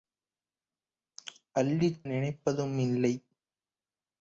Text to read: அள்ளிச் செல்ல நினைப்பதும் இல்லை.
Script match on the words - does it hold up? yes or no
no